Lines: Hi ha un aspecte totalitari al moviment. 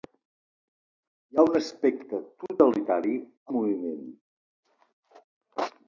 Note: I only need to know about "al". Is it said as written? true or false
false